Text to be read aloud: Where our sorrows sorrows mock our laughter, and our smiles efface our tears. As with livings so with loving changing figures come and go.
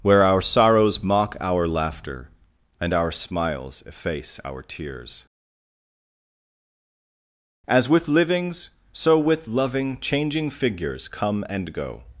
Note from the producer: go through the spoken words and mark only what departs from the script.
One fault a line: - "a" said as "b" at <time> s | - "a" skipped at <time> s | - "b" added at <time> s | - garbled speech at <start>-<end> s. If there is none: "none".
- "sorrows" skipped at 1.0 s